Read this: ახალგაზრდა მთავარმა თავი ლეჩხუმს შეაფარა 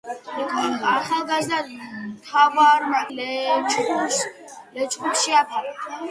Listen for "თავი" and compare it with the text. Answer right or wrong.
wrong